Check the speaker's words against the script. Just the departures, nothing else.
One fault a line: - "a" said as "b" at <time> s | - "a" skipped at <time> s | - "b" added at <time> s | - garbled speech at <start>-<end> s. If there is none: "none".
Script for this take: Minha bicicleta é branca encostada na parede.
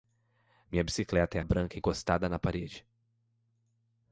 none